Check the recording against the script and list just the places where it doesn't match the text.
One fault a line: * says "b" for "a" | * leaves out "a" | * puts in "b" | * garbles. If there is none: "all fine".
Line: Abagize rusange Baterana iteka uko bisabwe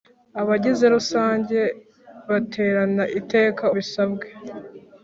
* leaves out "uko"